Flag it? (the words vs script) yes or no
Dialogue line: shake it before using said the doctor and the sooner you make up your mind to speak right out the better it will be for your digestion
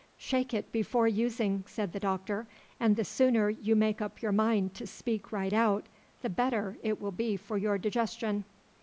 no